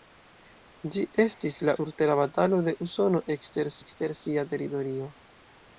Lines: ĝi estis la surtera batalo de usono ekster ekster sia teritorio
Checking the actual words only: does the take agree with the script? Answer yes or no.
yes